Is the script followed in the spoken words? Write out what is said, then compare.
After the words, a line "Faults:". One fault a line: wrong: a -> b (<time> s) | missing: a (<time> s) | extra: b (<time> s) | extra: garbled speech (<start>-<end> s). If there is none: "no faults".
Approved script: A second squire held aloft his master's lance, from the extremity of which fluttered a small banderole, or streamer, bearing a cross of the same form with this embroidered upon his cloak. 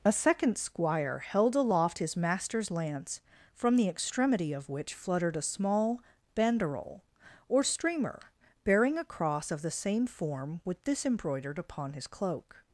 A second squire held aloft his master's lance, from the extremity of which fluttered a small banderole, or streamer, bearing a cross of the same form with this embroidered upon his cloak.
Faults:
no faults